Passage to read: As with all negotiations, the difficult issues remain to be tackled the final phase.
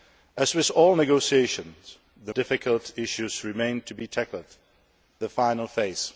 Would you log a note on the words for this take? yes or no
no